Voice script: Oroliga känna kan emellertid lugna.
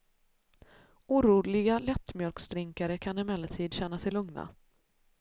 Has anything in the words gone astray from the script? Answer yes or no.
yes